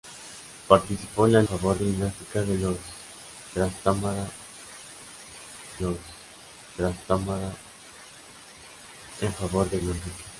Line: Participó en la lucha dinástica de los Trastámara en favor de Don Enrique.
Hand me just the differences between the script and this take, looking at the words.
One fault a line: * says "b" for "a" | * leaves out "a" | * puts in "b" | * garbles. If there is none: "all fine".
* says "favor" for "lucha"
* puts in "los Trastámara"
* leaves out "Don"